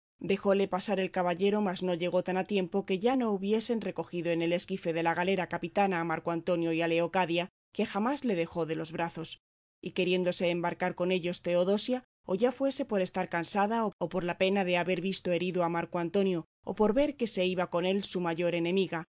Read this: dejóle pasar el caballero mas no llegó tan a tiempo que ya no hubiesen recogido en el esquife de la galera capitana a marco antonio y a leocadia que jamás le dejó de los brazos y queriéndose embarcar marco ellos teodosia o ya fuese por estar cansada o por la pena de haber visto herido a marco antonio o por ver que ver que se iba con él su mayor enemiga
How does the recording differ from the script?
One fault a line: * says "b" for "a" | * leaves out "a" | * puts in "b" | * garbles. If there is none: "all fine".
* says "con" for "marco"
* leaves out "ver que"